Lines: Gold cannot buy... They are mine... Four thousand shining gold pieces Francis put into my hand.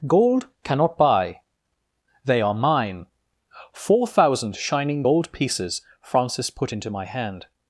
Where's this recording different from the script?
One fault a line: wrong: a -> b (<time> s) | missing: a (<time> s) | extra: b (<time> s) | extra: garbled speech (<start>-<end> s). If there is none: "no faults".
no faults